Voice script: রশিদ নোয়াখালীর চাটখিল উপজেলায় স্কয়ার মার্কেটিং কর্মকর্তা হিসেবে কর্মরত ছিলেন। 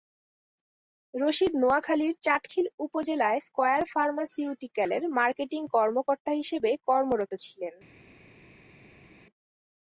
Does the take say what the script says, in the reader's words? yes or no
no